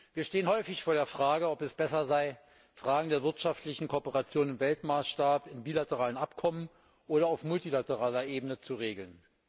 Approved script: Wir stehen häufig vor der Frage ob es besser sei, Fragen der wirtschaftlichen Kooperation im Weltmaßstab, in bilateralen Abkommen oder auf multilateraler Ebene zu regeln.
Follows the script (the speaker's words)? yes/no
yes